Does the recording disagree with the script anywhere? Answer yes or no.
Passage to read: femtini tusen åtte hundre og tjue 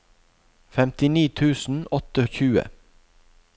yes